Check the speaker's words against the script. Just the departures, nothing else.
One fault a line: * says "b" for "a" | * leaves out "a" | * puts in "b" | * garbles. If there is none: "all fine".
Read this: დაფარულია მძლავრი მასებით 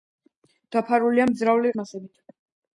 all fine